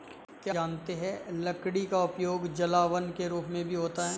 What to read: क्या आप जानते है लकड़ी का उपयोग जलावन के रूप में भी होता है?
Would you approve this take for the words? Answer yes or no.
no